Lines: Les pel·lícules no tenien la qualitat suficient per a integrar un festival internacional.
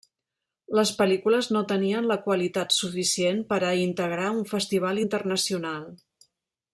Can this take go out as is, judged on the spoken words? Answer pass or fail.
pass